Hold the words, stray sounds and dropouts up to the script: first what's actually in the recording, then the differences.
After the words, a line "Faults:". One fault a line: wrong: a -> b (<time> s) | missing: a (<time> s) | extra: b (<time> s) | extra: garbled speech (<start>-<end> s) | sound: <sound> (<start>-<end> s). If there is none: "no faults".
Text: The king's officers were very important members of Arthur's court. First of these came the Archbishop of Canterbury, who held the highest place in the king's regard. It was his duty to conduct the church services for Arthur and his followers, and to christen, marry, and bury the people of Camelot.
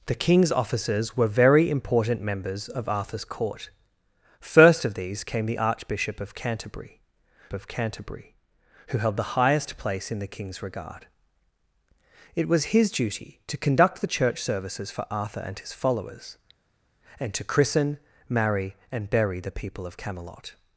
The king's officers were very important members of Arthur's court. First of these came the Archbishop of Canterbury of Canterbury, who held the highest place in the king's regard. It was his duty to conduct the church services for Arthur and his followers, and to christen, marry, and bury the people of Camelot.
Faults:
extra: of Canterbury (7.5 s)